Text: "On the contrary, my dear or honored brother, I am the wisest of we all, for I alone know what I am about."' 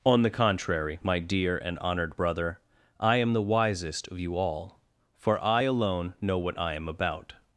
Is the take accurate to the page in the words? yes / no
no